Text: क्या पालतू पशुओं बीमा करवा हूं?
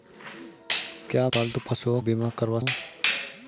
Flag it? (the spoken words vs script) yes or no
no